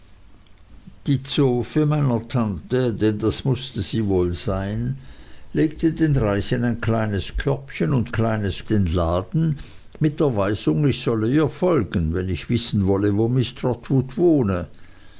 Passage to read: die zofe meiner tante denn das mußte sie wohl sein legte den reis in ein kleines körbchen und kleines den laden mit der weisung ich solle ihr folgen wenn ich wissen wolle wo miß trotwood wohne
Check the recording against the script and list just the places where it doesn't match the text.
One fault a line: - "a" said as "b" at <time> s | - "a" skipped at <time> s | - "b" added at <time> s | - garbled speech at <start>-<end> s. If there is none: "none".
none